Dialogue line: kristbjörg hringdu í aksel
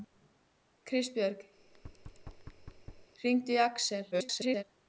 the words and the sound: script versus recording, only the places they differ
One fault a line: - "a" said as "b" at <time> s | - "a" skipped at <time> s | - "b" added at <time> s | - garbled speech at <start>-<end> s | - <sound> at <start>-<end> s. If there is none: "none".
- thud at 1.6-3.1 s
- garbled speech at 4.1-4.6 s